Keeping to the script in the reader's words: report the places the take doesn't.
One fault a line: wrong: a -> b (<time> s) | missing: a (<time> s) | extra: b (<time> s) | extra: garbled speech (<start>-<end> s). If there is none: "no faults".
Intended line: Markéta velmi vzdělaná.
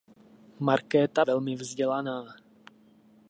no faults